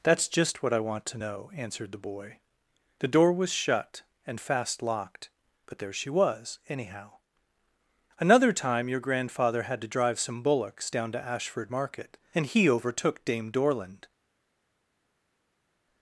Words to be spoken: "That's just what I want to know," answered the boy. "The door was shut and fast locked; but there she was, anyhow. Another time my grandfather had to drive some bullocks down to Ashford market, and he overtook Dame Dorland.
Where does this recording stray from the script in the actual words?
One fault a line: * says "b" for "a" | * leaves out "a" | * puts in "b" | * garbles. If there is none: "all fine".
* says "your" for "my"